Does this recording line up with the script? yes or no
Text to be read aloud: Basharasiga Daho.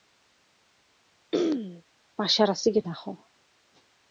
yes